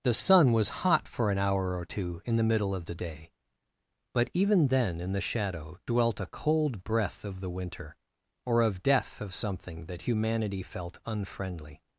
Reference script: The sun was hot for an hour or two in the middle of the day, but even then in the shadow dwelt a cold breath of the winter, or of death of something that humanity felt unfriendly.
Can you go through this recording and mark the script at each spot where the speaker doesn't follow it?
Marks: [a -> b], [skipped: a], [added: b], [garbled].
The sun was hot for an hour or two in the middle of the day, but even then in the shadow dwelt a cold breath of the winter, or of death of something that humanity felt unfriendly.